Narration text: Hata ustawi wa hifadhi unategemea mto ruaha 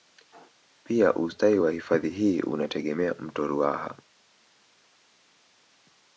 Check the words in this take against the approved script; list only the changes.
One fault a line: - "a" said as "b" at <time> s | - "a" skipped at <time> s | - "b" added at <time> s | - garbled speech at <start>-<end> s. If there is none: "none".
- "Hata" said as "Pia" at 0.8 s
- "hii" added at 2.1 s